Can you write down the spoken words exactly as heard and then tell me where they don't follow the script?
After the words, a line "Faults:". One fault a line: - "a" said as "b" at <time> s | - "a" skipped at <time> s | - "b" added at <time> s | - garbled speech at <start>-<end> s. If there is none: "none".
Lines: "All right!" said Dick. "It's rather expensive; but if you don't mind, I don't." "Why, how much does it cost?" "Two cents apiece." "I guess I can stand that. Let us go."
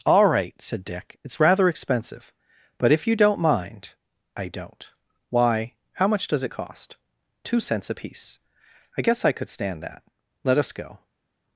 "All right!" said Dick. "It's rather expensive; but if you don't mind, I don't." "Why, how much does it cost?" "Two cents apiece." "I guess I could stand that. Let us go."
Faults:
- "can" said as "could" at 9.3 s